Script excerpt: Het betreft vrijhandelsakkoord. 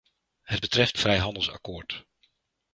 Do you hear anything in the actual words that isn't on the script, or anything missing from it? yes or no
no